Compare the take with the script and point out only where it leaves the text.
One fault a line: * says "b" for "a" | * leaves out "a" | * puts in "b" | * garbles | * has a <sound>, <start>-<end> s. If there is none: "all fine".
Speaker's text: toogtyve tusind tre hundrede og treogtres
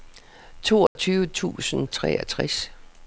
* has a dropout, 0.9-1.0 s
* leaves out "tre hundrede"